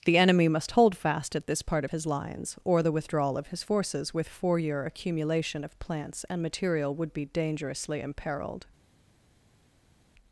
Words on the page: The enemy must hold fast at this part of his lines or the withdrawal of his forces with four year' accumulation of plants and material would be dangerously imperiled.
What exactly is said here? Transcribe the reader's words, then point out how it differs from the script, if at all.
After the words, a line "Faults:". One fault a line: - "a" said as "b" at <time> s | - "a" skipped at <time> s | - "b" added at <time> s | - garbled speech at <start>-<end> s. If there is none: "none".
The enemy must hold fast at this part of his lines or the withdrawal of his forces with four year' accumulation of plants and material would be dangerously imperiled.
Faults:
none